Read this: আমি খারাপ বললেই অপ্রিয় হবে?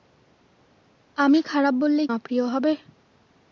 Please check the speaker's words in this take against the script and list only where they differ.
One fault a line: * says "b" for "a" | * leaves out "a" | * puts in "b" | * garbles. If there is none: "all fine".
all fine